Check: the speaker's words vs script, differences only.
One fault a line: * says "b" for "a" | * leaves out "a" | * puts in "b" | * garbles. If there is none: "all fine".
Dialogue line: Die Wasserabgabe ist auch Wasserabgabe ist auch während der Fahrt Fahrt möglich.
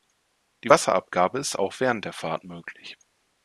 * leaves out "Wasserabgabe ist auch"
* leaves out "Fahrt"